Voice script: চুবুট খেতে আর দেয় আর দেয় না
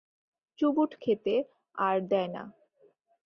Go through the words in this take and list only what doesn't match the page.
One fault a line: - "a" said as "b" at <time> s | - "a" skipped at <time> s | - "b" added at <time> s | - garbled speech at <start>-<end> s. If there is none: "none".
- "আর দেয়" skipped at 2.3 s